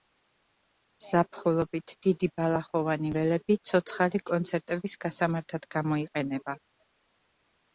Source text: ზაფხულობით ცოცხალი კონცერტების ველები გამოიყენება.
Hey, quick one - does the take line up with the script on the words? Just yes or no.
no